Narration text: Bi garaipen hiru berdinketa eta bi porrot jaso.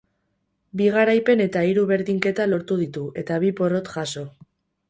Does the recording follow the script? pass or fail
fail